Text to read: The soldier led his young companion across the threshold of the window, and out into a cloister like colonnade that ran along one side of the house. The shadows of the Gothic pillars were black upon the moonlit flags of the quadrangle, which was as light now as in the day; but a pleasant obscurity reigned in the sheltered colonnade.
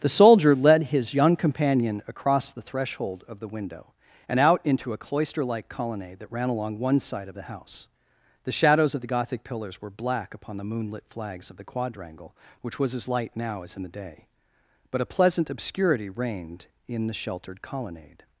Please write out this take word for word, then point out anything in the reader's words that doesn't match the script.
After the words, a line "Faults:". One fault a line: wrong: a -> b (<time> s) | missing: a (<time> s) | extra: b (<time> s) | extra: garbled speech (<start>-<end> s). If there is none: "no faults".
The soldier led his young companion across the threshold of the window, and out into a cloister like colonnade that ran along one side of the house. The shadows of the Gothic pillars were black upon the moonlit flags of the quadrangle, which was as light now as in the day; but a pleasant obscurity reigned in the sheltered colonnade.
Faults:
no faults